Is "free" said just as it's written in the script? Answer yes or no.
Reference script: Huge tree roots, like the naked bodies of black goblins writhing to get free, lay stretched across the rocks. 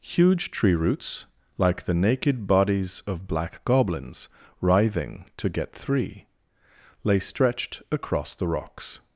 no